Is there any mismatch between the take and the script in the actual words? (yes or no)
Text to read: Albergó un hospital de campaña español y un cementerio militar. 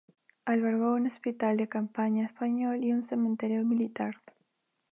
no